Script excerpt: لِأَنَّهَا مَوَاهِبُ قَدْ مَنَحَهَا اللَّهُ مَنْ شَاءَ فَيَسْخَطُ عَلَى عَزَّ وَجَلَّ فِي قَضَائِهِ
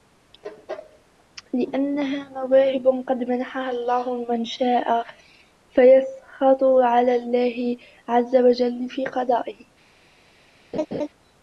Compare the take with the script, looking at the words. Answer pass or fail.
fail